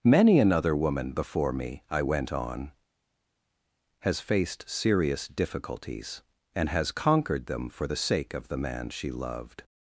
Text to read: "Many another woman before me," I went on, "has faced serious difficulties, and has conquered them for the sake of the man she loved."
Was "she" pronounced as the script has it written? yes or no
yes